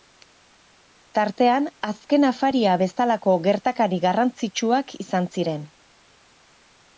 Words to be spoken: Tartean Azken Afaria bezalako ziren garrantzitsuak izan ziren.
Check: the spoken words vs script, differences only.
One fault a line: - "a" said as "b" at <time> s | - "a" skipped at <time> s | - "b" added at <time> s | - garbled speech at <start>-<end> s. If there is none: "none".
- "ziren" said as "gertakari" at 3.5 s